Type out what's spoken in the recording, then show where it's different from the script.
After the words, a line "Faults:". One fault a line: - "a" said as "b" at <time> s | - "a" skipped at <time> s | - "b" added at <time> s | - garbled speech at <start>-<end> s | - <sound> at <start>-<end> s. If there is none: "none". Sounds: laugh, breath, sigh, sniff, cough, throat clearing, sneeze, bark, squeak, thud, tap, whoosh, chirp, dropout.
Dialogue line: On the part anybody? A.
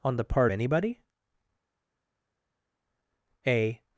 On the part anybody? A.
Faults:
none